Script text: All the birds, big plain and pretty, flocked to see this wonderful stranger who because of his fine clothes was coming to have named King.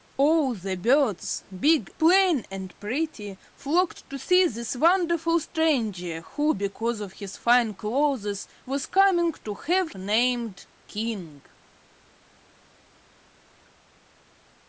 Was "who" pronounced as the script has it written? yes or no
yes